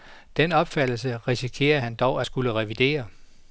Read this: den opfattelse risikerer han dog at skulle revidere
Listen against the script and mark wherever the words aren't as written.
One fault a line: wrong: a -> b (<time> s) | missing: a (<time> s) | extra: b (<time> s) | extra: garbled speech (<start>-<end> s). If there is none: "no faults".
no faults